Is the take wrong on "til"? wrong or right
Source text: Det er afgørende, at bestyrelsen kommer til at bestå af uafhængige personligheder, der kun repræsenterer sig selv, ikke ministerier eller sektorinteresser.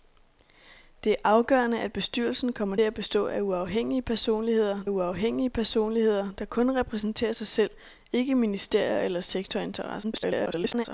wrong